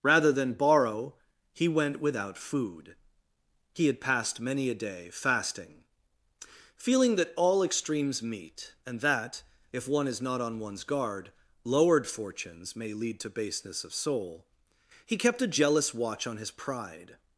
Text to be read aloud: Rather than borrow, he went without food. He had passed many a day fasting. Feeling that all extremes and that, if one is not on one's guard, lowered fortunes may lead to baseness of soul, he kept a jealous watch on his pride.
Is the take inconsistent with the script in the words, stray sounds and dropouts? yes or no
yes